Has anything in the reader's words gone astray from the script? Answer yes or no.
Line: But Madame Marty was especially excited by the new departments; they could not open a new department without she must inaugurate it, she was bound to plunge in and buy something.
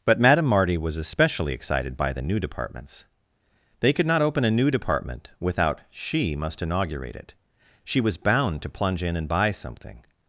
no